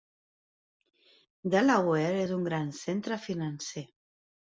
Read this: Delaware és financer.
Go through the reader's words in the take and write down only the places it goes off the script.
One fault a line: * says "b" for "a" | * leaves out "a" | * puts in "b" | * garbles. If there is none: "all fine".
* puts in "un gran centre"